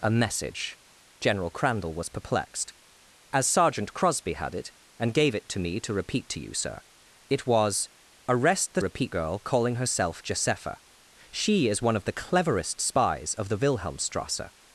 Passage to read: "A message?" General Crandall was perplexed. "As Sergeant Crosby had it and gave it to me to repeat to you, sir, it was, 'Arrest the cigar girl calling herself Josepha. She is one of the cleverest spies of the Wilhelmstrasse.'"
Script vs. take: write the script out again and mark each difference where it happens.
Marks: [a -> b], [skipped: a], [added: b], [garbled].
"A message?" General Crandall was perplexed. "As Sergeant Crosby had it and gave it to me to repeat to you, sir, it was, 'Arrest the [cigar -> repeat] girl calling herself Josepha. She is one of the cleverest spies of the Wilhelmstrasse.'"